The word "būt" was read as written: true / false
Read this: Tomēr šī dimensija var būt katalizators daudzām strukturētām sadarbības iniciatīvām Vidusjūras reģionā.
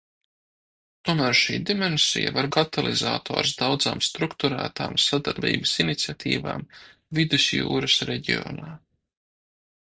false